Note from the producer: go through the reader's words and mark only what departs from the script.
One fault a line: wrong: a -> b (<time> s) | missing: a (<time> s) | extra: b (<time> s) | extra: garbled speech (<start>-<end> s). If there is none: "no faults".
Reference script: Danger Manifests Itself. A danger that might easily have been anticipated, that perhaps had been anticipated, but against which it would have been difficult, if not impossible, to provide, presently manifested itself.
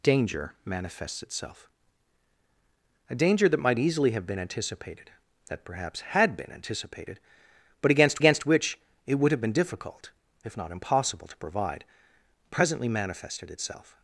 extra: against (8.2 s)